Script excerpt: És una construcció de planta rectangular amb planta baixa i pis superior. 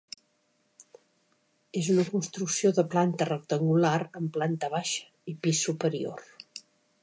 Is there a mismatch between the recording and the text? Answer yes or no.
no